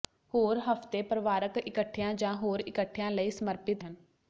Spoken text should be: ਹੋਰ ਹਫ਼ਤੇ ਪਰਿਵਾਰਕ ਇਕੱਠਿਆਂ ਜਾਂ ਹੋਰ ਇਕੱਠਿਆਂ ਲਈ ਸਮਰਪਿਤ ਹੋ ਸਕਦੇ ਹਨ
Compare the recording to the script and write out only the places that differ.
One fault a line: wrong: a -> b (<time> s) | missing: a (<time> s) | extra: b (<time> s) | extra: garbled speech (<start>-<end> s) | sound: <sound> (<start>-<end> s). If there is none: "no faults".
missing: ਹੋ ਸਕਦੇ (3.8 s)